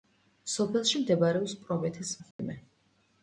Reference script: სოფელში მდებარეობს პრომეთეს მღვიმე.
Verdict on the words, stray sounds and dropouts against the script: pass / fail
fail